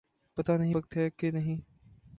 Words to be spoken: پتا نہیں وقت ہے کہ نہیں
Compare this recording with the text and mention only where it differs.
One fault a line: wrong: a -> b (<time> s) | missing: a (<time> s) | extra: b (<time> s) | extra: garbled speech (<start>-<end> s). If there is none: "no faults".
no faults